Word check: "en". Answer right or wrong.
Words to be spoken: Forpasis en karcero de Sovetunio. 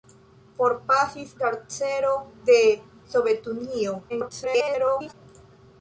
wrong